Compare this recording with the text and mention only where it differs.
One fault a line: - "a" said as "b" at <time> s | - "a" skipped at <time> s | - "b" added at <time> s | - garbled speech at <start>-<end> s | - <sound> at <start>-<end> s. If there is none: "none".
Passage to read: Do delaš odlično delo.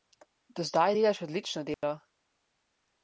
- "zdaj" added at 0.6 s
- dropout at 1.7-1.8 s